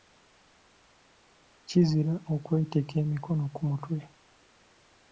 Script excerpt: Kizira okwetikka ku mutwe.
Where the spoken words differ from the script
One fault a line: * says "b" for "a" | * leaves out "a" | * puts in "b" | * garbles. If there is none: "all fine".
* puts in "emikono"